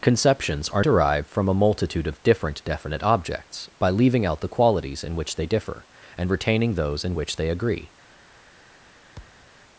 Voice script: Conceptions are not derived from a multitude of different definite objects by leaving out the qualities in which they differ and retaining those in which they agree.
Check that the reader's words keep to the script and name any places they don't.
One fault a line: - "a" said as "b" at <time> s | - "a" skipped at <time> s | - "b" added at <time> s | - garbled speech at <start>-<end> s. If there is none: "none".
- "not" skipped at 0.8 s